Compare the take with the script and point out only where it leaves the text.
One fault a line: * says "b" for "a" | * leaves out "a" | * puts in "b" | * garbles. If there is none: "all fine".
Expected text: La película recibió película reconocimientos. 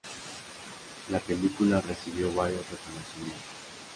* says "varios" for "película"